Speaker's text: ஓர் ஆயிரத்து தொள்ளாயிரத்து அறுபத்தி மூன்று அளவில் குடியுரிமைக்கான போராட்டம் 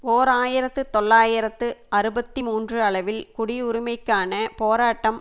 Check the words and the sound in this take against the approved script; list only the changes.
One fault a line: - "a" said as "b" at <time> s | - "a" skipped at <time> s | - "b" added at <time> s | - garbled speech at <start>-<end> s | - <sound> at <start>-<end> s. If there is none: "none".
none